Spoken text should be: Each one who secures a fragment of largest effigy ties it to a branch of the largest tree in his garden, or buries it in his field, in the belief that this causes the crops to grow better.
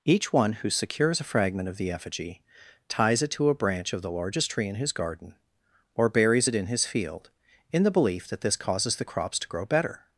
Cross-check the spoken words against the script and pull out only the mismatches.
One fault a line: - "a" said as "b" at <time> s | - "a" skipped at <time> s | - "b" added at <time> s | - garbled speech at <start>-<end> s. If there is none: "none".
- "largest" said as "the" at 1.8 s